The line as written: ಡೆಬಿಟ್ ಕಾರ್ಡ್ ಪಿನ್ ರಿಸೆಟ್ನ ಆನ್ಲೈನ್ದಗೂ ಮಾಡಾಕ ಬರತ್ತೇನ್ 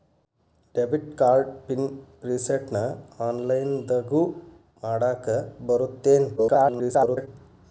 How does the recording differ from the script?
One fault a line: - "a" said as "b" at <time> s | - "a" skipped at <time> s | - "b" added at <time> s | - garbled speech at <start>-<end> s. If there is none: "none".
- garbled speech at 6.4-7.3 s